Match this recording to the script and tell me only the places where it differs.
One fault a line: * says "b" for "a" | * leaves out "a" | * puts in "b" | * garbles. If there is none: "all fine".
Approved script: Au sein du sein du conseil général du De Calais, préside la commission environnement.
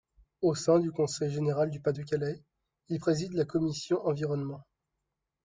* leaves out "sein du"
* puts in "Pas"
* puts in "il"